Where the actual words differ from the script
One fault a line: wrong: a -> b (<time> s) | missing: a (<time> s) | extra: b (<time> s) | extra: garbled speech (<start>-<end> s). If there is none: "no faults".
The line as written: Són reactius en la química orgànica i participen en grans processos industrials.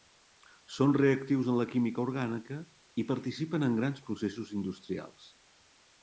no faults